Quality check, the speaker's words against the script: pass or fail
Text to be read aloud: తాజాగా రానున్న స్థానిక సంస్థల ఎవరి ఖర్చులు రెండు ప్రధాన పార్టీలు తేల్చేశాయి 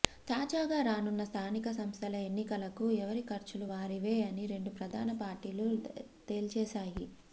fail